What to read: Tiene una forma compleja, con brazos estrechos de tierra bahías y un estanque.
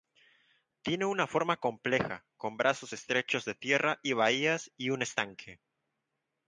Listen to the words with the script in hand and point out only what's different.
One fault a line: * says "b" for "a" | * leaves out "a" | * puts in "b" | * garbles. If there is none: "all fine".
* puts in "y"